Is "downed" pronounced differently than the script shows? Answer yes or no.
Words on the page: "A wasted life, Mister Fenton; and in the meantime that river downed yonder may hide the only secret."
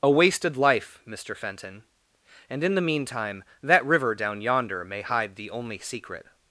yes